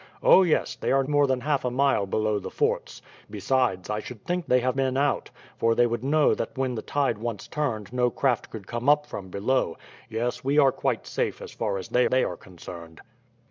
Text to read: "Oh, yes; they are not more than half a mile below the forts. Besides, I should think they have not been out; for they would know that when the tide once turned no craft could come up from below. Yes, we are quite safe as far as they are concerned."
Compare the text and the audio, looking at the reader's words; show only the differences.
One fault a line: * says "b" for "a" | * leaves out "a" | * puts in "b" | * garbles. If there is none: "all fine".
* leaves out "not"
* leaves out "not"
* puts in "they"